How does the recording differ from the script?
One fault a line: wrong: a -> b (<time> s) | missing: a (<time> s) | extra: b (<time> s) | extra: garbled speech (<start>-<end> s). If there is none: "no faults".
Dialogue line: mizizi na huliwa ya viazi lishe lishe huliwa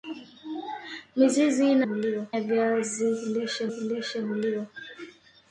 no faults